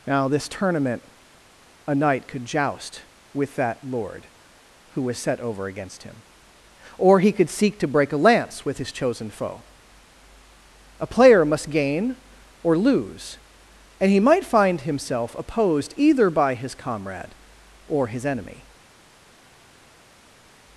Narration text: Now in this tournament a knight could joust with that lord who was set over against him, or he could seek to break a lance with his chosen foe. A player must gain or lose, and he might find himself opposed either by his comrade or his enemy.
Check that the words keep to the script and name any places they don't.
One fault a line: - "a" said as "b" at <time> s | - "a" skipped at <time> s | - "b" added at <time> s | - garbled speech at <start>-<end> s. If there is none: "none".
- "in" skipped at 0.3 s